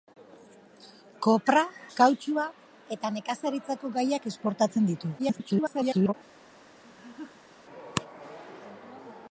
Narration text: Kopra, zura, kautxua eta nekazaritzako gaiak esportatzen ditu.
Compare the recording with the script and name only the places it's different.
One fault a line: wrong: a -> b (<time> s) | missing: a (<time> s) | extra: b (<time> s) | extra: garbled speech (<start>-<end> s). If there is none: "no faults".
missing: zura (1.6 s)
extra: garbled speech (5.2-6.1 s)